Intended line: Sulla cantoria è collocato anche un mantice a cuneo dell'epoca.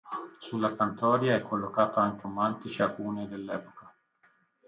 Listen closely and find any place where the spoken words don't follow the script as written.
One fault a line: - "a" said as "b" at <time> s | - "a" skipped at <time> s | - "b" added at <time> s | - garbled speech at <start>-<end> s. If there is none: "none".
none